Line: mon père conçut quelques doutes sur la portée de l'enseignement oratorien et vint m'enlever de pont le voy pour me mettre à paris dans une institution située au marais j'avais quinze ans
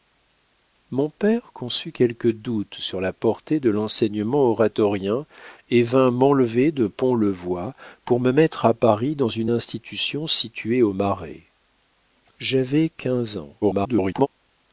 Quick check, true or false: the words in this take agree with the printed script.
false